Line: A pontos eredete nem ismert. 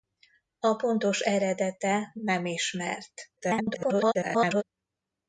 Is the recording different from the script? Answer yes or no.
yes